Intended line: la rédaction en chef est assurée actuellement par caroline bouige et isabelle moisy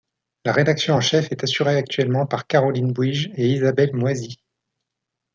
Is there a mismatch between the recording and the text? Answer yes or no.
no